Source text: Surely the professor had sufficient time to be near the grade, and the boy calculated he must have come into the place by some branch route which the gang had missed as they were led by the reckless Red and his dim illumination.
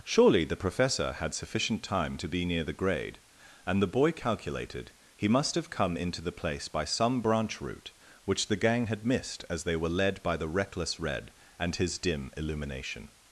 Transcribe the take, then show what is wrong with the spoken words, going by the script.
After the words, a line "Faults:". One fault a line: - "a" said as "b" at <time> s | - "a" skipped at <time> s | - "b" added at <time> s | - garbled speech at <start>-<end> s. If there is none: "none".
Surely the professor had sufficient time to be near the grade, and the boy calculated he must have come into the place by some branch route which the gang had missed as they were led by the reckless Red and his dim illumination.
Faults:
none